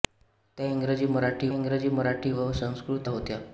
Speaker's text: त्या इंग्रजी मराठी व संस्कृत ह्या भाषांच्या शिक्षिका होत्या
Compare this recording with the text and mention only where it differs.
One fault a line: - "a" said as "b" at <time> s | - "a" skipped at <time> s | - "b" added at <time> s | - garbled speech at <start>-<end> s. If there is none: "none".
- "इंग्रजी मराठी" added at 1.5 s
- "ह्या भाषांच्या शिक्षिका" skipped at 3.1 s